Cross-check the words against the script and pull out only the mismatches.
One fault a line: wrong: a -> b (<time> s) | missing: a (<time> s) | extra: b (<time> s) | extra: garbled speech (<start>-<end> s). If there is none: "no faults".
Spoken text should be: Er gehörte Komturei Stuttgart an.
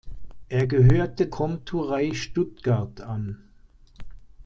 no faults